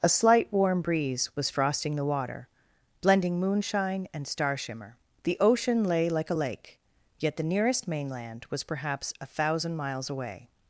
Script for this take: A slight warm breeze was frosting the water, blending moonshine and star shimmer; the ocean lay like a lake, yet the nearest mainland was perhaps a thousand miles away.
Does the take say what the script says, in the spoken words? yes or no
yes